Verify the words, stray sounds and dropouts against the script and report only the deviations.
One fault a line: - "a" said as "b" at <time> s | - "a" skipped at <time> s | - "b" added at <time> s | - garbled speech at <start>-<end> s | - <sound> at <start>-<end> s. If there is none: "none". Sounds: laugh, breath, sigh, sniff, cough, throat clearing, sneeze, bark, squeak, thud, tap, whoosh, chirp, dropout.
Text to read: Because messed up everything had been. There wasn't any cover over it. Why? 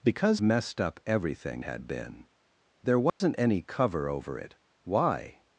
- dropout at 3.1-3.2 s